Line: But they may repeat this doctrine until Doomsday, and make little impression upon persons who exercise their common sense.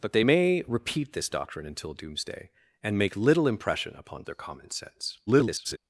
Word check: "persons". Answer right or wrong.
wrong